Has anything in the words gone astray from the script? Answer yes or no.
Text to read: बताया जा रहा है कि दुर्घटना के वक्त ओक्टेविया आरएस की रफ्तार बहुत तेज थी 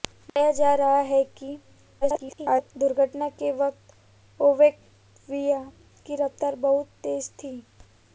yes